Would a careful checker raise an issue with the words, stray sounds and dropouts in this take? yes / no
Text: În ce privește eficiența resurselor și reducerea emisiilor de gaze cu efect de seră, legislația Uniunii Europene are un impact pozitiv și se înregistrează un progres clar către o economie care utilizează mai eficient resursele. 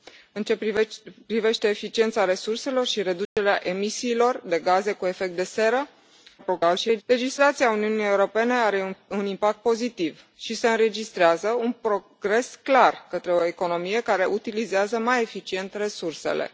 yes